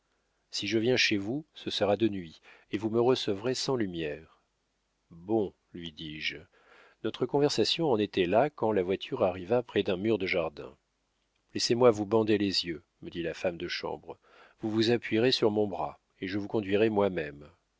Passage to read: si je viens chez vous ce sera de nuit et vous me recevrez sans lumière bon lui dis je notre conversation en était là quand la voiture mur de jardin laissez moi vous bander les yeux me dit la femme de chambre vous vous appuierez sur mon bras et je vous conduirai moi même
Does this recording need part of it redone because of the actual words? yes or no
yes